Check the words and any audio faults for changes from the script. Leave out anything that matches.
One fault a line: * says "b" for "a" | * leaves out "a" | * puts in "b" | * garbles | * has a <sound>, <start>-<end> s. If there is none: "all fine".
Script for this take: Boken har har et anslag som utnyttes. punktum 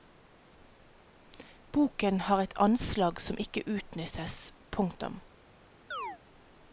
* leaves out "har"
* puts in "ikke"
* has a chirp, 5.9-6.2 s